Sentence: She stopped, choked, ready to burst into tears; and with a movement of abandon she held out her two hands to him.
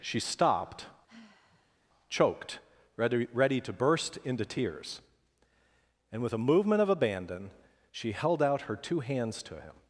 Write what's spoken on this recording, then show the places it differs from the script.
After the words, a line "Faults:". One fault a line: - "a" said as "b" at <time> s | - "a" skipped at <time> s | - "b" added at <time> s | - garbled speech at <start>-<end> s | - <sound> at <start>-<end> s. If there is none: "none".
She stopped, choked, ready ready to burst into tears; and with a movement of abandon she held out her two hands to him.
Faults:
- sigh at 1.1-1.8 s
- "ready" added at 3.3 s